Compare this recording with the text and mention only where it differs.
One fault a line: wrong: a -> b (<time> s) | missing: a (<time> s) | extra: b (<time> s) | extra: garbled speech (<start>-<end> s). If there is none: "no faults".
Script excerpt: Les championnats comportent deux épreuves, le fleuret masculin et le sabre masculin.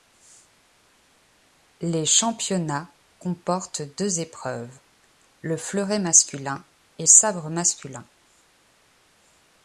missing: le (7.0 s)